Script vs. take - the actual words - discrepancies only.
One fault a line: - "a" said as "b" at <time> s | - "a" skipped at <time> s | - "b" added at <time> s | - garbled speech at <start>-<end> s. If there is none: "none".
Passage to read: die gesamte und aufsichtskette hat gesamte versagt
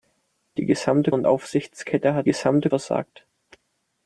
none